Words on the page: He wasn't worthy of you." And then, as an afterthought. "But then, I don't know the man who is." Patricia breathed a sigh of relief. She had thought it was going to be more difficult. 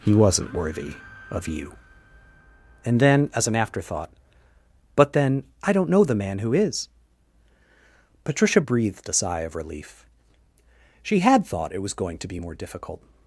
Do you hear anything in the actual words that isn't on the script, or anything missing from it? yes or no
no